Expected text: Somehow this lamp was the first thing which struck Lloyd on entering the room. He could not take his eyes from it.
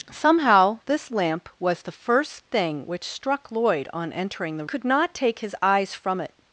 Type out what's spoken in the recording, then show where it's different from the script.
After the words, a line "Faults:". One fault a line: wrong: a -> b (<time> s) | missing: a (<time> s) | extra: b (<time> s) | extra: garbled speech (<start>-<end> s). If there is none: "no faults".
Somehow this lamp was the first thing which struck Lloyd on entering the could not take his eyes from it.
Faults:
missing: room He (4.7 s)